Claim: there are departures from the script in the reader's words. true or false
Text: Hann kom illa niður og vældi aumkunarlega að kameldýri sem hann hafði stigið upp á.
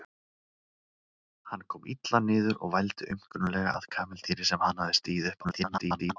true